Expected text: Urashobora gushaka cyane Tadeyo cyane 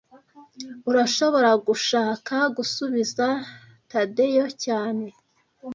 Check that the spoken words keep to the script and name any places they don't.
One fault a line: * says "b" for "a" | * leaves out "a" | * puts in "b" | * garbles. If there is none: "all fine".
* says "gusubiza" for "cyane"